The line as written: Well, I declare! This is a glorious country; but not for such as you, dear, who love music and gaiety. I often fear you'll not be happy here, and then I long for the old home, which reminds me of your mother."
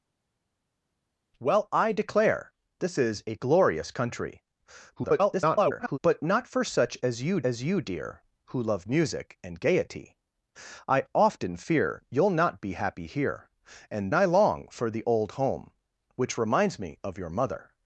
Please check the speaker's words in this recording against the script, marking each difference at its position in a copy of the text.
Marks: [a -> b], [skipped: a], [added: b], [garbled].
Well, I declare! This is a glorious country; [garbled] but not for such as you, [added: as you] dear, who love music and gaiety. I often fear you'll not be happy here, and [skipped: then] I long for the old home, which reminds me of your mother."